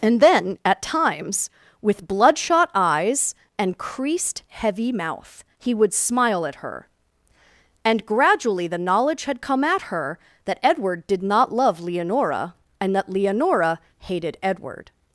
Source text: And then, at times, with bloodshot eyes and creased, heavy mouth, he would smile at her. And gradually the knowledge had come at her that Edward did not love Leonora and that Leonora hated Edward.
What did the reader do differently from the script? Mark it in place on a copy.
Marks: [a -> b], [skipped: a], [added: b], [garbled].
And then, at times, with bloodshot eyes and creased, heavy mouth, he would smile at her. And gradually the knowledge had come at her that Edward did not love Leonora and that Leonora hated Edward.